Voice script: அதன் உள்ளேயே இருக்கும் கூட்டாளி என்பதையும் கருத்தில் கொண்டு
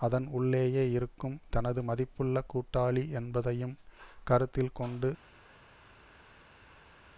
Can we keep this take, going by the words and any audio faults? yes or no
no